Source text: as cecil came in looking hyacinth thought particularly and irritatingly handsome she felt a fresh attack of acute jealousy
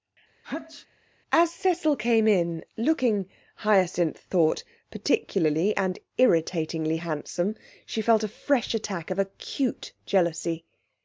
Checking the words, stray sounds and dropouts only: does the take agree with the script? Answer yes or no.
no